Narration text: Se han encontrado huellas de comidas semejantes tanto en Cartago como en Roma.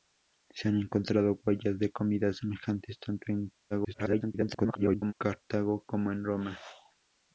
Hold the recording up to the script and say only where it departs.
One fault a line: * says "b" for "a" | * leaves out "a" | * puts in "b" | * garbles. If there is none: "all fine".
* garbles